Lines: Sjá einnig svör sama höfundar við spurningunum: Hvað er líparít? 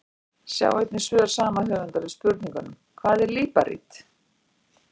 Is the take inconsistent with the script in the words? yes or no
no